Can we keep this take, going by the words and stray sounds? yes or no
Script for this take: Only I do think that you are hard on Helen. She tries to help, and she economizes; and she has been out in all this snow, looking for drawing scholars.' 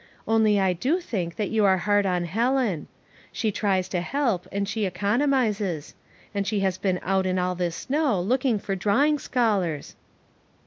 yes